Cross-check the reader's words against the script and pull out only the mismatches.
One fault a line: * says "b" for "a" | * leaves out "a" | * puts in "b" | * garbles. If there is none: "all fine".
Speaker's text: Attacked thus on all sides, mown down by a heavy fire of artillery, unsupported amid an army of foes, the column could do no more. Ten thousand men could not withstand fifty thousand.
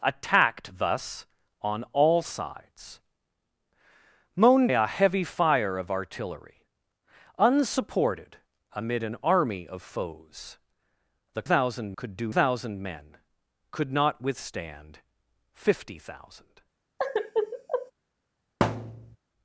* leaves out "down by"
* says "thousand" for "column"
* leaves out "no more Ten"